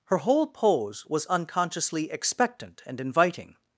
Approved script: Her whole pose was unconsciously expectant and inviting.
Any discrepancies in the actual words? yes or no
no